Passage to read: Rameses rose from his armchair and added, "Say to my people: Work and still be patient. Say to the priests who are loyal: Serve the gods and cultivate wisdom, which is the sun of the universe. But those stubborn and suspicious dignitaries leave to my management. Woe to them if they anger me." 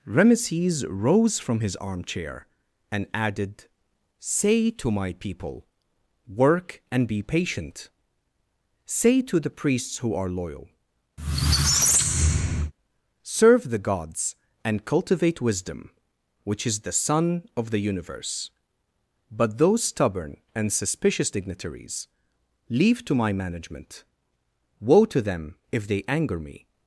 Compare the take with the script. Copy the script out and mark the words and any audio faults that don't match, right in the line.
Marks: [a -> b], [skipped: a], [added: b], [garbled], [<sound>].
Rameses rose from his armchair and added, "Say to my people: Work and [skipped: still] be patient. Say to the priests who are loyal: [squeak] Serve the gods and cultivate wisdom, which is the sun of the universe. But those stubborn and suspicious dignitaries leave to my management. Woe to them if they anger me."